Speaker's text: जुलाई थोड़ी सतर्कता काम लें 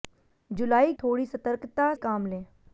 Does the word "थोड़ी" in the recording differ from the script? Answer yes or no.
no